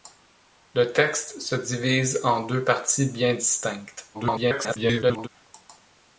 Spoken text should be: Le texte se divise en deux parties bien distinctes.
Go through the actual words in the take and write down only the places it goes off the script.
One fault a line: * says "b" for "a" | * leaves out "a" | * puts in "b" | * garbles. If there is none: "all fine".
* garbles